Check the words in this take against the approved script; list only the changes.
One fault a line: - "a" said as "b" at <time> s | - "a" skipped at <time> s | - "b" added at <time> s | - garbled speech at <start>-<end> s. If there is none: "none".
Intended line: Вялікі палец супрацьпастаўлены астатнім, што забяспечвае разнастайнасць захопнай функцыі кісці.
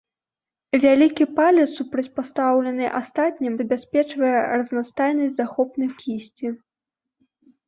- "што" skipped at 3.5 s
- "функцыі" skipped at 5.9 s